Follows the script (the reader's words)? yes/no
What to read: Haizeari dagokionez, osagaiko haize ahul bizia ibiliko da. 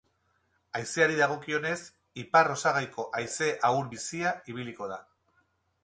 no